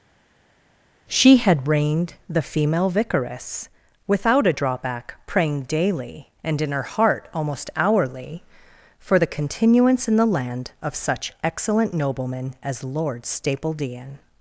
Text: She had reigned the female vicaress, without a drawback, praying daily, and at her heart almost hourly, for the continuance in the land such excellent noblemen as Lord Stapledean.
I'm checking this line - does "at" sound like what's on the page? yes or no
no